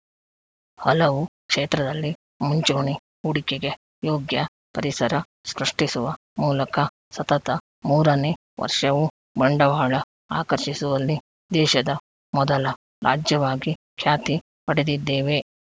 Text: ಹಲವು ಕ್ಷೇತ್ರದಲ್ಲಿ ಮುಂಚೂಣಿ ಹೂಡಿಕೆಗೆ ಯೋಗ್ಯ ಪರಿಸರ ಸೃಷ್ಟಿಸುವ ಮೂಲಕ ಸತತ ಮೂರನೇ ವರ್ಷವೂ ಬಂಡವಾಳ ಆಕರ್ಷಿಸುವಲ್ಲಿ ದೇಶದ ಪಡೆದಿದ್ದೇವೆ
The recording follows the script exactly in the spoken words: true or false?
false